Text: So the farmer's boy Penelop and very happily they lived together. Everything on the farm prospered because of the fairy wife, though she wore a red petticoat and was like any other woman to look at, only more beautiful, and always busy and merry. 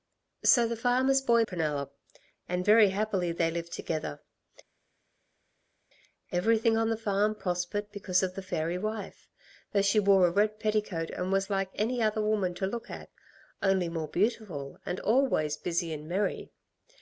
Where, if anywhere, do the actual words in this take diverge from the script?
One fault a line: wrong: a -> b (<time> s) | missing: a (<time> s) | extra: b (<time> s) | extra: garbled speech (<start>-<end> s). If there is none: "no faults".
no faults